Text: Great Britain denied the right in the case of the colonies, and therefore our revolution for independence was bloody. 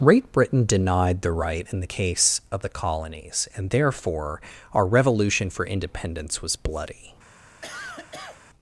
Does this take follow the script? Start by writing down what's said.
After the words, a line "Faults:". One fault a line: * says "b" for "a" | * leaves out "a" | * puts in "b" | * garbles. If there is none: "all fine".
Great Britain denied the right in the case of the colonies, and therefore our revolution for independence was bloody.
Faults:
all fine